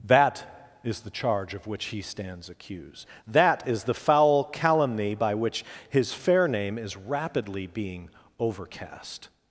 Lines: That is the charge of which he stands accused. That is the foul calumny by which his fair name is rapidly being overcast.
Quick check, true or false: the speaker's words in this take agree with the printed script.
true